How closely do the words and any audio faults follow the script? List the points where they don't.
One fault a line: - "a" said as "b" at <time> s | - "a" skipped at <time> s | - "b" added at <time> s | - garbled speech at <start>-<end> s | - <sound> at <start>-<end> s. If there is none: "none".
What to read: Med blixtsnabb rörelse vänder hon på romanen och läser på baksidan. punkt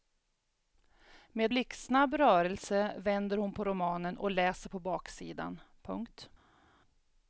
none